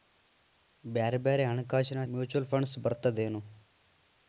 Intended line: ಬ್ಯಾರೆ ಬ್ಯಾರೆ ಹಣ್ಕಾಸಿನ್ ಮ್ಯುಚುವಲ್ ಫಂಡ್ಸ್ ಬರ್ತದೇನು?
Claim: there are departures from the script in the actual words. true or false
false